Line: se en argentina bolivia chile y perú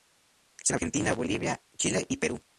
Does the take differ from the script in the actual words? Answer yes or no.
no